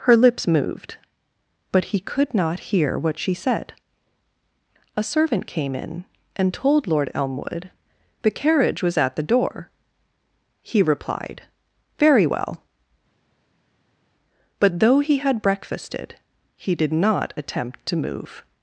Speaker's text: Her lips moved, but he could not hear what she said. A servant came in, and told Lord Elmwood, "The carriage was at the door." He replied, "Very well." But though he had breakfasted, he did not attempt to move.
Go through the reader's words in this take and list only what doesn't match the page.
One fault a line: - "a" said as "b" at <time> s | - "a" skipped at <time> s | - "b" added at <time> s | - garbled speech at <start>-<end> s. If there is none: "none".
none